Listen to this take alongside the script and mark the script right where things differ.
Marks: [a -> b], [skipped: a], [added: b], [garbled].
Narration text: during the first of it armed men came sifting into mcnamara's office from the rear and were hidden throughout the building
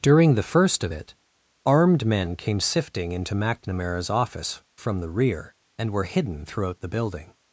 during the first of it armed men came sifting into mcnamara's office from the rear and were hidden throughout the building